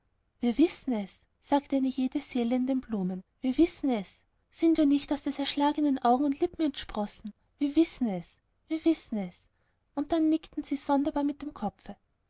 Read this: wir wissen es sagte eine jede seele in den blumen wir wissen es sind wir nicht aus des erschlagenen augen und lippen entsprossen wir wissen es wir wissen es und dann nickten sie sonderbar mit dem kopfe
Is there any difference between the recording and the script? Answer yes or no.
no